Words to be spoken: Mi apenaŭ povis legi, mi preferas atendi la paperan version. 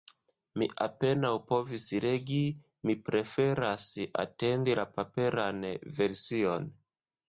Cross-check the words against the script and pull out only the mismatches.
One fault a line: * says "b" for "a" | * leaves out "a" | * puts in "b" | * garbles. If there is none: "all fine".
all fine